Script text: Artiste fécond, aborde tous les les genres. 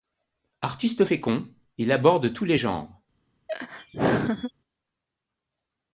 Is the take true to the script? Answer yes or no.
no